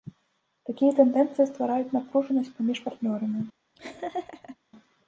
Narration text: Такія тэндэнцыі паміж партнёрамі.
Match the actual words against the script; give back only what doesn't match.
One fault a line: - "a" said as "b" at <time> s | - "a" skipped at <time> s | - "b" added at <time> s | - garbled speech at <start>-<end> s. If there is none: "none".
- "ствараюць напружанасць" added at 1.5 s